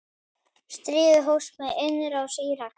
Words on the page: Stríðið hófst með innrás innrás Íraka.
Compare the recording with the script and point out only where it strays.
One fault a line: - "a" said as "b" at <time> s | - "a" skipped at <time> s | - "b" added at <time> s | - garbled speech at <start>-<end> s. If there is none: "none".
- "innrás" skipped at 2.4 s